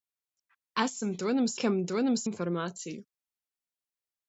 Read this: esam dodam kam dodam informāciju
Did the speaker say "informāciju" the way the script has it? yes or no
yes